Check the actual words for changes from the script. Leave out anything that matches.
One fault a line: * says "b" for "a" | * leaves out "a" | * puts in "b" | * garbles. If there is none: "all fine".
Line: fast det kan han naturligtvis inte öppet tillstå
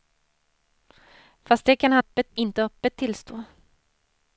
* says "öppet" for "naturligtvis"